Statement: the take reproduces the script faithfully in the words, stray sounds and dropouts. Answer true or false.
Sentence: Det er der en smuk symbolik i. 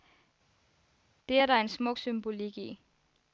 true